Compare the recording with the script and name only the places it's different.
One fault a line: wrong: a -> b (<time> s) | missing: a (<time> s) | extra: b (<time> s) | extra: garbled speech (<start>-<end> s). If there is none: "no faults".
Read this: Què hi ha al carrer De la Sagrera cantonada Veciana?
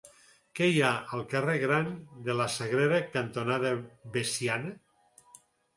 extra: Gran (1.6 s)